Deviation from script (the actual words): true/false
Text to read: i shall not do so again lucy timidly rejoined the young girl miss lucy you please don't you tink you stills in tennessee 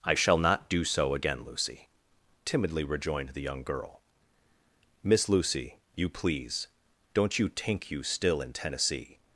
true